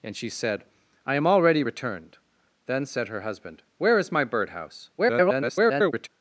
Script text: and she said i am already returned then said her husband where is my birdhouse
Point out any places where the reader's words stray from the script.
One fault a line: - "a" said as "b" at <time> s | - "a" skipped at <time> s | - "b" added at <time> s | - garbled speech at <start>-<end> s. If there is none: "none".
- garbled speech at 5.0-6.1 s